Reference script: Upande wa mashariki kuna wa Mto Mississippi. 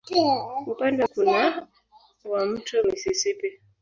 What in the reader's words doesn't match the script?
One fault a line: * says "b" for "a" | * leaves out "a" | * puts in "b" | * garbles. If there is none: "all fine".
* leaves out "wa mashariki"